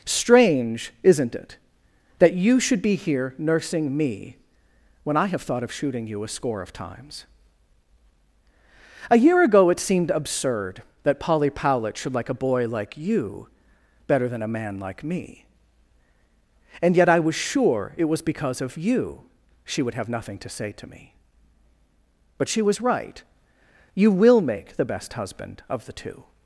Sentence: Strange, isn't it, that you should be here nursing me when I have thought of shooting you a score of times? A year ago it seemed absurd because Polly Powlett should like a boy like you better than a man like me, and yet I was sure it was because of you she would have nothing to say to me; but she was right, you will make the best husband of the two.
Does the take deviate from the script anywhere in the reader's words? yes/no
yes